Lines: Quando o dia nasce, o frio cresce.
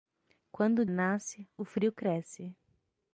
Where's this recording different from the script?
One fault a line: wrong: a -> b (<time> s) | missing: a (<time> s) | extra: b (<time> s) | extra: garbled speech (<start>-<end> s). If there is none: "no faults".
missing: dia (0.8 s)